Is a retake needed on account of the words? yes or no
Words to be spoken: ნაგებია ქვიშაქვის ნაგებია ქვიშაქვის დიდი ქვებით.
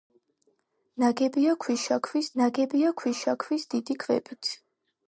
no